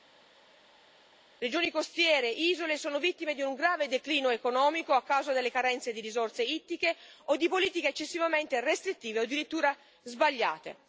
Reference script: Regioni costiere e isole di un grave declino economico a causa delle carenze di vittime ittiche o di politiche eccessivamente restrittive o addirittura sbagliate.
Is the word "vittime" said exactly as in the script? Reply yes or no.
no